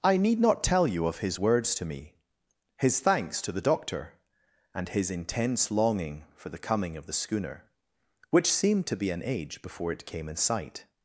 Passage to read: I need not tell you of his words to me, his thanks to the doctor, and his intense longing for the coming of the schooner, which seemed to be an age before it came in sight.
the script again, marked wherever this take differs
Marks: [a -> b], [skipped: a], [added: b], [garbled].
I need not tell you of his words to me, his thanks to the doctor, and his intense longing for the coming of the schooner, which seemed to be an age before it came in sight.